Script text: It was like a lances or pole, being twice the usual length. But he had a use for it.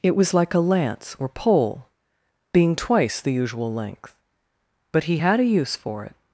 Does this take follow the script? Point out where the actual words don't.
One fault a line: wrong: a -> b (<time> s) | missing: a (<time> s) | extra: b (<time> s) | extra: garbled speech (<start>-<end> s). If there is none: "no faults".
wrong: lances -> lance (0.6 s)